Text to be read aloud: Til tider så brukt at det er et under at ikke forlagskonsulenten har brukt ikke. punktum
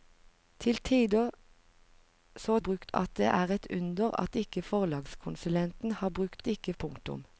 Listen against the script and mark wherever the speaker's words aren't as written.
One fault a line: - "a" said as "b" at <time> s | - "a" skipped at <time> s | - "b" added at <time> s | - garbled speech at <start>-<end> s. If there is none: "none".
none